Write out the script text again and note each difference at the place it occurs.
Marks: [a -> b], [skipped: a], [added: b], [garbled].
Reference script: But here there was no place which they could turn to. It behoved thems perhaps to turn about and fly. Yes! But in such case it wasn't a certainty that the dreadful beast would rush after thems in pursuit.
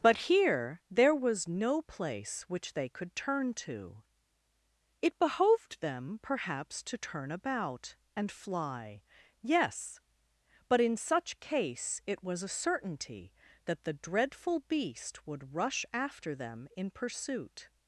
But here there was no place which they could turn to. It behoved [thems -> them] perhaps to turn about and fly. Yes! But in such case it [wasn't -> was] a certainty that the dreadful beast would rush after [thems -> them] in pursuit.